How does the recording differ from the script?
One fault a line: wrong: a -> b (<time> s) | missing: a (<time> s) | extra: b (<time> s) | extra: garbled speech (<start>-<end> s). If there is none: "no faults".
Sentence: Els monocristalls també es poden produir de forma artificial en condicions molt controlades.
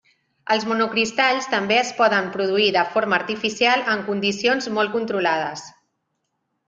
no faults